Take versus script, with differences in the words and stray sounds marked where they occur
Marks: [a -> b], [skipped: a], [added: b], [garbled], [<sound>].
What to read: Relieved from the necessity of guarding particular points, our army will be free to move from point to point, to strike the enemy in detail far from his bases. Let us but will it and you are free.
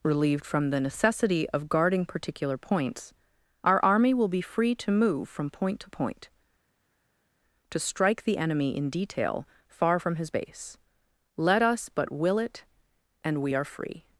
Relieved from the necessity of guarding particular points, our army will be free to move from point to point, to strike the enemy in detail far from his [bases. -> base] Let us but will it and [you -> we] are free.